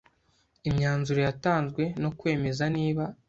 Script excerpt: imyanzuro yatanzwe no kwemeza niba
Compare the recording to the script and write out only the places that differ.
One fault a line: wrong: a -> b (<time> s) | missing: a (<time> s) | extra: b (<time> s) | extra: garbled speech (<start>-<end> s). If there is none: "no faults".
no faults